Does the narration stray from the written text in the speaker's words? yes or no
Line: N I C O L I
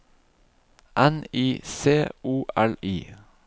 no